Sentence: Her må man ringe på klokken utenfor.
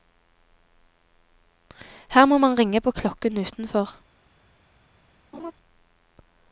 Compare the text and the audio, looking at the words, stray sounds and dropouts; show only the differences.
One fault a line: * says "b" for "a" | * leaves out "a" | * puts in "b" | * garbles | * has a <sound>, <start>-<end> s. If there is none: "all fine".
* has a laugh, 5.3-5.5 s